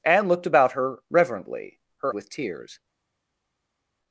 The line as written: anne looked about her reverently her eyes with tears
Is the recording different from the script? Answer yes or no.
yes